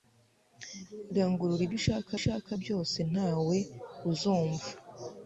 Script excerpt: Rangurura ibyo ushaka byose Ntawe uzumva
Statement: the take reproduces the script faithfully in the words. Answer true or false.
false